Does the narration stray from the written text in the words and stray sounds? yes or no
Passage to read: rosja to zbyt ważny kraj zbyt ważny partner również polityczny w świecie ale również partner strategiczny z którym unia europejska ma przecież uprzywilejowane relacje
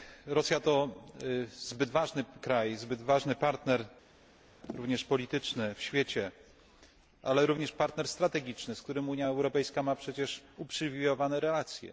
no